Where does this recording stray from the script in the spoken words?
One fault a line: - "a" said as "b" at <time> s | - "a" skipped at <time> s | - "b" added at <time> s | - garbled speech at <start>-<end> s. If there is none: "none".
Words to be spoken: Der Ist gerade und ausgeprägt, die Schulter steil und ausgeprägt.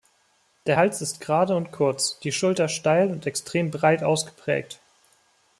- "Hals" added at 0.7 s
- "ausgeprägt" said as "kurz" at 1.7 s
- "extrem breit" added at 3.2 s